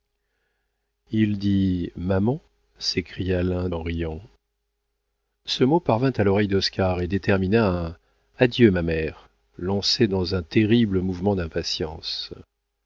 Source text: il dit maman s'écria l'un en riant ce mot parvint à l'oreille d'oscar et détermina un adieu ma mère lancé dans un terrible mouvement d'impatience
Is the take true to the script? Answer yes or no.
yes